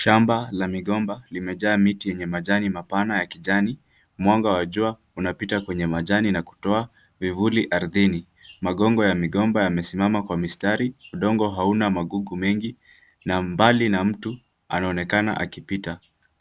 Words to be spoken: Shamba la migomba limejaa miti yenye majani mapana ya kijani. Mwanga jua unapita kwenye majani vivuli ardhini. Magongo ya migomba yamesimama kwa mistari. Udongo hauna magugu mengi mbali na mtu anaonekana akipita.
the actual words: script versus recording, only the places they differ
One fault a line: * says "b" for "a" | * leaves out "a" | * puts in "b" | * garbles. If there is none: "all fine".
* puts in "wa"
* puts in "na kutoa"
* puts in "na"